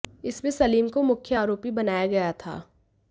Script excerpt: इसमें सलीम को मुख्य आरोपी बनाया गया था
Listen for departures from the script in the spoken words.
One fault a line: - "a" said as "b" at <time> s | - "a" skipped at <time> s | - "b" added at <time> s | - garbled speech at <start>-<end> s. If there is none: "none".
none